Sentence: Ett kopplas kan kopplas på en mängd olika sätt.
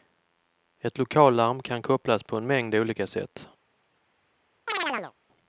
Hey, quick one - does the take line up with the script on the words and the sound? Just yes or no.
no